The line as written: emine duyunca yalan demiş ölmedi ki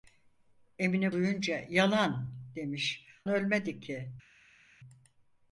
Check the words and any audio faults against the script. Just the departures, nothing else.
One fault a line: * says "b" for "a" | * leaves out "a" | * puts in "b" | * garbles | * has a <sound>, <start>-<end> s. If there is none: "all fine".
all fine